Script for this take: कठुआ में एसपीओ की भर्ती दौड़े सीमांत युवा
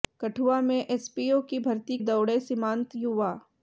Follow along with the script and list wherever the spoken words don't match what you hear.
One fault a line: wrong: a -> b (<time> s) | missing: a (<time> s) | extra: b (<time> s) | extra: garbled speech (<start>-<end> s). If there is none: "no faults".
no faults